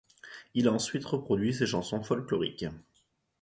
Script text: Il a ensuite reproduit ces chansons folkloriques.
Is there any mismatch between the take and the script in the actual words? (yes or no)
no